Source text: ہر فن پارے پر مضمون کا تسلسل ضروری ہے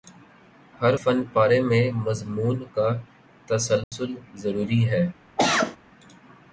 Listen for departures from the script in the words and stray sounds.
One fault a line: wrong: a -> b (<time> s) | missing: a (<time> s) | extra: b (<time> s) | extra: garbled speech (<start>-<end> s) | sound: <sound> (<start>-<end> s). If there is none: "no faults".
wrong: پر -> میں (1.6 s)
sound: dropout (3.8-3.9 s)
sound: cough (5.4-5.8 s)